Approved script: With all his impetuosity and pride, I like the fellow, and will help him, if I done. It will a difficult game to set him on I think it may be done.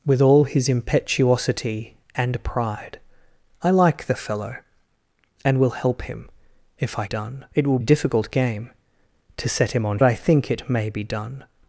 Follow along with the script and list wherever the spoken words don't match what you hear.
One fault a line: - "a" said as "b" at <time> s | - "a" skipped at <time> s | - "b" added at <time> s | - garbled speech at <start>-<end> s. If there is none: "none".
none